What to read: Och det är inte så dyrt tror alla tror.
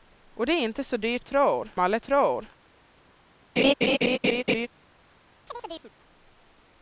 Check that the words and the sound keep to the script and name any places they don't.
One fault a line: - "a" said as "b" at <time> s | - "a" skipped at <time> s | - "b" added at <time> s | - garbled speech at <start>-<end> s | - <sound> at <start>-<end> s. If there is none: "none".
- laugh at 3.6-4.7 s
- chirp at 5.5-5.9 s